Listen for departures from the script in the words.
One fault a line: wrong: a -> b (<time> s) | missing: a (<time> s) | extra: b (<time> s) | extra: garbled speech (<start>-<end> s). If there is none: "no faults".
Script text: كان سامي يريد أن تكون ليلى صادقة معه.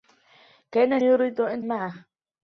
missing: سامي (1.0 s)
missing: تكون ليلى صادقة (1.6 s)